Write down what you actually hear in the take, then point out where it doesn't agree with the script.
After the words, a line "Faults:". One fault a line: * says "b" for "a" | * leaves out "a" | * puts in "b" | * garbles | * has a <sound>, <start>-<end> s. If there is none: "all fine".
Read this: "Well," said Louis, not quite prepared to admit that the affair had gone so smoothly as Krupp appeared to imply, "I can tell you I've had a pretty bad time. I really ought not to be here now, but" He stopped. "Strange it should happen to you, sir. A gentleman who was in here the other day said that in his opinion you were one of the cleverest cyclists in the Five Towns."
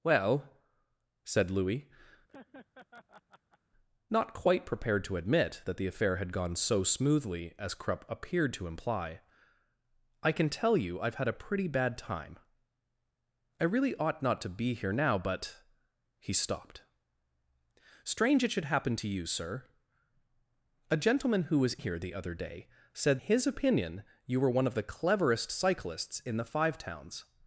"Well," said Louis, not quite prepared to admit that the affair had gone so smoothly as Krupp appeared to imply, "I can tell you I've had a pretty bad time. I really ought not to be here now, but" He stopped. "Strange it should happen to you, sir. A gentleman who was here the other day said his opinion you were one of the cleverest cyclists in the Five Towns."
Faults:
* has a laugh, 2.3-3.6 s
* leaves out "in"
* leaves out "that in"